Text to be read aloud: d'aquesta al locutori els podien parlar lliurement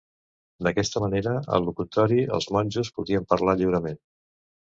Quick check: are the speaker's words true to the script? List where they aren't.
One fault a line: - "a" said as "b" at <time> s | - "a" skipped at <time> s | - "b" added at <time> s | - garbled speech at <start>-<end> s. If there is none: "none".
- "manera" added at 1.0 s
- "monjos" added at 2.6 s